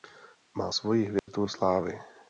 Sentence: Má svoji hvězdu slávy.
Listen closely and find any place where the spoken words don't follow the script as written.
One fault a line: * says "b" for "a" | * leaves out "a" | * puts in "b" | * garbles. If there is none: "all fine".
all fine